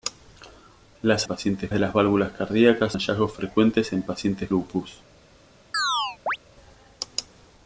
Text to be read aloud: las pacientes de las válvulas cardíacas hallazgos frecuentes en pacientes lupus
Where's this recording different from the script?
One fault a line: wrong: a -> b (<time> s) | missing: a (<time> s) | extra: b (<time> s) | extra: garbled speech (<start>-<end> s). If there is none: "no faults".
no faults